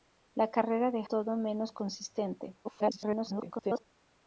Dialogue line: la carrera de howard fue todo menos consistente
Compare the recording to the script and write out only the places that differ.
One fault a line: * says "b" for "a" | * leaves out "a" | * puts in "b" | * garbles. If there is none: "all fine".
* leaves out "howard fue"
* garbles